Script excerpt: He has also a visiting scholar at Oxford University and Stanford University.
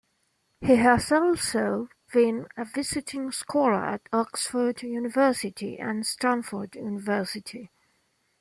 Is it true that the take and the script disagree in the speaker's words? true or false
true